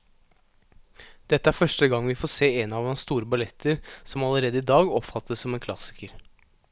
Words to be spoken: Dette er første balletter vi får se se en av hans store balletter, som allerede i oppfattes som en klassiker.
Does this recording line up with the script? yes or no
no